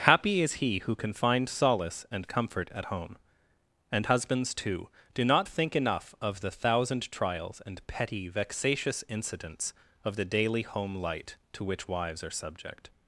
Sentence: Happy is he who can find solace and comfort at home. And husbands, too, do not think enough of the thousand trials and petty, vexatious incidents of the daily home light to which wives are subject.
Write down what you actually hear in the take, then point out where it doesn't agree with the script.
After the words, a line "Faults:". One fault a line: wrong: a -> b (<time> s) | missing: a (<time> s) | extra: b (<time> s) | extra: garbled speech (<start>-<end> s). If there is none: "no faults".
Happy is he who can find solace and comfort at home. And husbands, too, do not think enough of the thousand trials and petty, vexatious incidents of the daily home light to which wives are subject.
Faults:
no faults